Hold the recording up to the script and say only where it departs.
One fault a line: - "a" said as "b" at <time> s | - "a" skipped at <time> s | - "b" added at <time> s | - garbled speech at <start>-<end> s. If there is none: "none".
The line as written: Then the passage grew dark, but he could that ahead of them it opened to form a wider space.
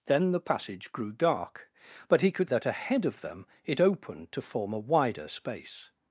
none